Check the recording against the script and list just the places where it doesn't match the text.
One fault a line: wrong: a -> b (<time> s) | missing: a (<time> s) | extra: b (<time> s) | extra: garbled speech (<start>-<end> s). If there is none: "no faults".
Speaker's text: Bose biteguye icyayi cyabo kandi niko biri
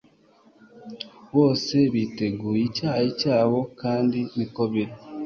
no faults